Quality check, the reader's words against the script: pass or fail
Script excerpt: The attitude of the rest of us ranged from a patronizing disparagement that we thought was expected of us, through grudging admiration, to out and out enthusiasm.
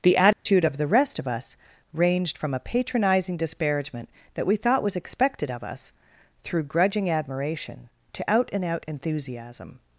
pass